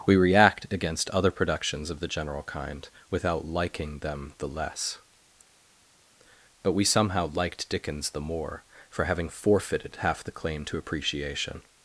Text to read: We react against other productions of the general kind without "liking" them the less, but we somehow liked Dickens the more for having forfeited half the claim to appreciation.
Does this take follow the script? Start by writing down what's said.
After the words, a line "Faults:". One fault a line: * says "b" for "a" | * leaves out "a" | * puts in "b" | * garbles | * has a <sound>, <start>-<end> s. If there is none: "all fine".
We react against other productions of the general kind without "liking" them the less, but we somehow liked Dickens the more for having forfeited half the claim to appreciation.
Faults:
all fine